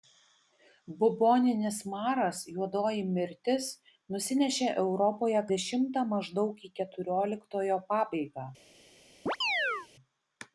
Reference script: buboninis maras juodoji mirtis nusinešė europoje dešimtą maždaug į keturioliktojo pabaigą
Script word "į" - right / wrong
right